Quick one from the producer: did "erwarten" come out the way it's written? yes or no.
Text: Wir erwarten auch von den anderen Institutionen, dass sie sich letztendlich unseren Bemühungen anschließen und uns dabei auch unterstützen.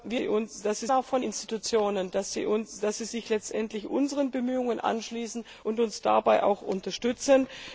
no